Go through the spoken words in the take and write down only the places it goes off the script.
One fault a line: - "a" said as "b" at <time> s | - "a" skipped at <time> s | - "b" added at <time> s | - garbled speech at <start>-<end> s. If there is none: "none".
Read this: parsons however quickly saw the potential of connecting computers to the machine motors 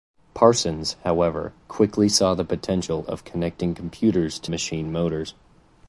- "the" skipped at 4.5 s